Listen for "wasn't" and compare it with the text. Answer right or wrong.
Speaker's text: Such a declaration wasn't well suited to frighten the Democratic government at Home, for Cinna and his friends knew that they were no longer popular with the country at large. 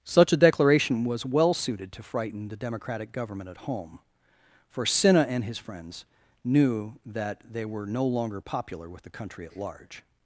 wrong